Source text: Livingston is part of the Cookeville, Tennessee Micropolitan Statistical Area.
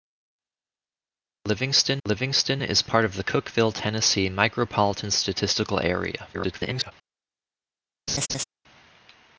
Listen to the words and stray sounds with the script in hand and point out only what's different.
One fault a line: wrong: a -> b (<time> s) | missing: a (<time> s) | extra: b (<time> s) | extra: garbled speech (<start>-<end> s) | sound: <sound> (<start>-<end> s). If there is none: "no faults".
extra: livingston (2.0 s)
extra: garbled speech (6.3-6.9 s)
sound: laugh (8.1-8.4 s)